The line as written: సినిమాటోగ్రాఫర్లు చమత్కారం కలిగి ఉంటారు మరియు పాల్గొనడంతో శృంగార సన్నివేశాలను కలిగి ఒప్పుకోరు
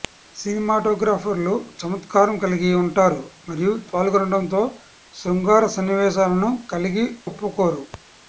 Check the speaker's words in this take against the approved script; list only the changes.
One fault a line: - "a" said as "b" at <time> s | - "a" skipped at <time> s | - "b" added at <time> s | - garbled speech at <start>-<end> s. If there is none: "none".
none